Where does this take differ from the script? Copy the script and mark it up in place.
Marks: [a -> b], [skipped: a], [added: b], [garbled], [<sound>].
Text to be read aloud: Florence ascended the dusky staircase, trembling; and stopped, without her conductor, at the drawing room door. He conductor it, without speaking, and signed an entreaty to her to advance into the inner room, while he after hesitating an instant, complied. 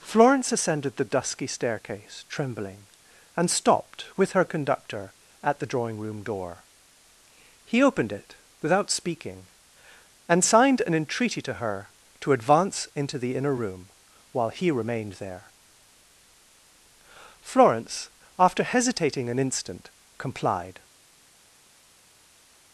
Florence ascended the dusky staircase, trembling; and stopped, [without -> with] her conductor, at the drawing room door. He [conductor -> opened] it, without speaking, and signed an entreaty to her to advance into the inner room, while he [added: remained there Florence] after hesitating an instant, complied.